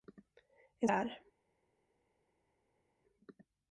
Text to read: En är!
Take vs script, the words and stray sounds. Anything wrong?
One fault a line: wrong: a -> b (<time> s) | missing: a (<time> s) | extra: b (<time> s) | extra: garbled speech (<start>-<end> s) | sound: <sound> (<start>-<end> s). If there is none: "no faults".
no faults